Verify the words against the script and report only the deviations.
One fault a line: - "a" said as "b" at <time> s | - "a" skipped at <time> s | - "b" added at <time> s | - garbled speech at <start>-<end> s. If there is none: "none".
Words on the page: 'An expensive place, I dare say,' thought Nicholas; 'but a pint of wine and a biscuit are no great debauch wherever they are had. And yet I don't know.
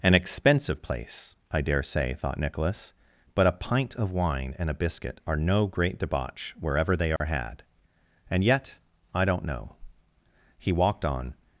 - "He walked on" added at 10.6 s